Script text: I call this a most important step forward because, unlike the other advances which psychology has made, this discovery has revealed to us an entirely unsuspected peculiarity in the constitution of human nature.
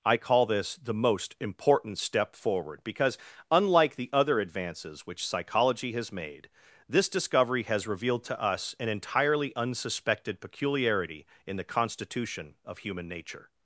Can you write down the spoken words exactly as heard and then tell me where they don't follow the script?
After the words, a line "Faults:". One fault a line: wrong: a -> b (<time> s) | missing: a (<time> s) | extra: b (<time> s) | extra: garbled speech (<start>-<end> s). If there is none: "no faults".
I call this the most important step forward because, unlike the other advances which psychology has made, this discovery has revealed to us an entirely unsuspected peculiarity in the constitution of human nature.
Faults:
wrong: a -> the (0.8 s)